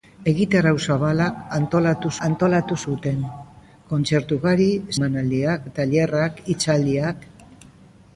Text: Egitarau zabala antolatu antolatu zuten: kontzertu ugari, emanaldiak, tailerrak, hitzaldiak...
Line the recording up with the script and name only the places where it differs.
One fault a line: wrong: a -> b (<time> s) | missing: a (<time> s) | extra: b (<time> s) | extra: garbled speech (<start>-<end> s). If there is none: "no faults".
no faults